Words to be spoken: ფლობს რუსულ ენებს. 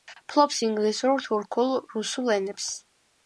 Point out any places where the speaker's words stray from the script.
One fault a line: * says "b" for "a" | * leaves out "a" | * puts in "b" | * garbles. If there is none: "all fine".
* puts in "ინგლისურ თურქულ"